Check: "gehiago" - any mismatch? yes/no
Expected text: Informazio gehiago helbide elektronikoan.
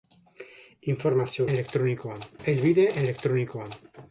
yes